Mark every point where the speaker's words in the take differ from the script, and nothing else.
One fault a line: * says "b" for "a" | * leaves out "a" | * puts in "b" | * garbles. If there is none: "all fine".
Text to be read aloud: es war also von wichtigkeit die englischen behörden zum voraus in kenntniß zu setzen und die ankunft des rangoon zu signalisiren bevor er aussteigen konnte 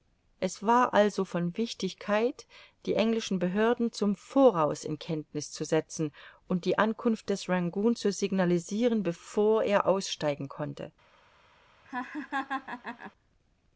all fine